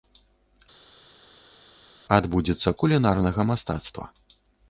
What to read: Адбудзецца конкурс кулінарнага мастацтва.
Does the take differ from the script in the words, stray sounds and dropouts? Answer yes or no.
yes